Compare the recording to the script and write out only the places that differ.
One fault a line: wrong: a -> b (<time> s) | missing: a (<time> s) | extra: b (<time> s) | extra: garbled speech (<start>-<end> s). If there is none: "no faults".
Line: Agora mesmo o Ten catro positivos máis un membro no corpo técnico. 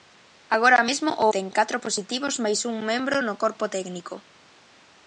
no faults